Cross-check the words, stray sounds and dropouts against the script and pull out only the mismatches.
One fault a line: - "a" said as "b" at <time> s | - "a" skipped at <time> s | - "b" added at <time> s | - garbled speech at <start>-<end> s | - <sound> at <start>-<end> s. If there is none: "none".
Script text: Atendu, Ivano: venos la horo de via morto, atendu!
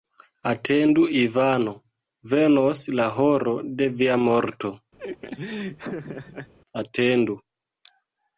- laugh at 5.0-6.5 s